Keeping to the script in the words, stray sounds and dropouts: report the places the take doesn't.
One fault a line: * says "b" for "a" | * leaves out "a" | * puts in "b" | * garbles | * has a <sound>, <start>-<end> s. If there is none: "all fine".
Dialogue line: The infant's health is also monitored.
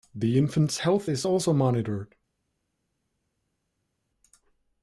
all fine